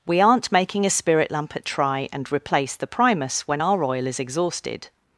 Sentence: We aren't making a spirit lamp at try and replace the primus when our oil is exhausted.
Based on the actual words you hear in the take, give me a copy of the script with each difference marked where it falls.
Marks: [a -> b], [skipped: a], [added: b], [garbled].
We aren't making a spirit lamp at try and replace the primus when our oil is exhausted.